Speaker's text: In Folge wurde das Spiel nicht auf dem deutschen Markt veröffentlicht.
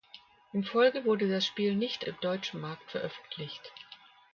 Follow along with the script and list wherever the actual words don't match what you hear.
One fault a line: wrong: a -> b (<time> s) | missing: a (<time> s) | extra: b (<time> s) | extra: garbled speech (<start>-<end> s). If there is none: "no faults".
missing: auf (2.1 s)